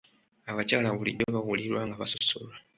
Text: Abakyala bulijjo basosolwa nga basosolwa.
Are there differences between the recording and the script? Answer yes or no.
yes